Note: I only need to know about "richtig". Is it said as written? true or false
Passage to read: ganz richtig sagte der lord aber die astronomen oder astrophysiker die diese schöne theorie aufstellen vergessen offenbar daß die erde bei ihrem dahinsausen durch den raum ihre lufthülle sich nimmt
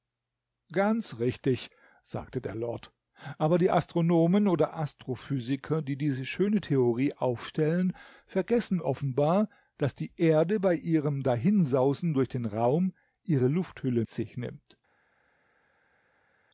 true